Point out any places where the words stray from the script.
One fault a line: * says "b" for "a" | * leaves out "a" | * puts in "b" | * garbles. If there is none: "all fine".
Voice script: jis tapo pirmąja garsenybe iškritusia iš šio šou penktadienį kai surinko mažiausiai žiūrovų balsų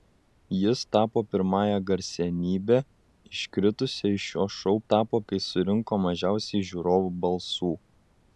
* says "tapo" for "penktadienį"